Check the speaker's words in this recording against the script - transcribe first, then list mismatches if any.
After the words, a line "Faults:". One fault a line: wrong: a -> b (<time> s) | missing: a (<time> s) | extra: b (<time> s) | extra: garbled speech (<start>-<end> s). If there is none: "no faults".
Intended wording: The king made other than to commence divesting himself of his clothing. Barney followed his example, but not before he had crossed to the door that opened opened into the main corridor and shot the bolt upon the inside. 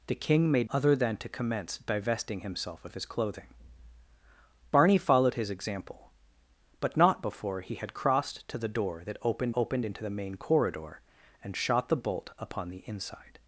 The king made other than to commence divesting himself of his clothing. Barney followed his example, but not before he had crossed to the door that opened opened into the main corridor and shot the bolt upon the inside.
Faults:
no faults